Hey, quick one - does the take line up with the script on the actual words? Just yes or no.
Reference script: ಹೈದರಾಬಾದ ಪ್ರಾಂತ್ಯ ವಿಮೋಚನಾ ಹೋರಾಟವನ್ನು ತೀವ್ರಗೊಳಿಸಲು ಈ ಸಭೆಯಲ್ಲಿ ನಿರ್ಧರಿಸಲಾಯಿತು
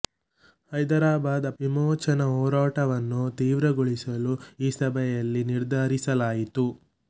no